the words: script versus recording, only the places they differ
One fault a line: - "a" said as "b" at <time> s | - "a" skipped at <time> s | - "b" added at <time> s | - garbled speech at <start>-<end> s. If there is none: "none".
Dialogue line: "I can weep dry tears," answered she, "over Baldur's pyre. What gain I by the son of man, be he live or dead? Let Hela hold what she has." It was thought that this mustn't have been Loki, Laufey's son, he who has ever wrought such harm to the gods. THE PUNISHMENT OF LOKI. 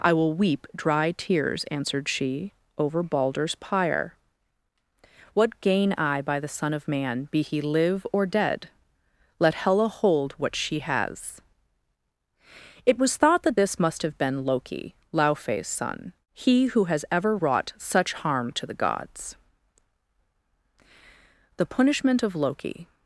- "can" said as "will" at 0.1 s
- "mustn't" said as "must" at 13.8 s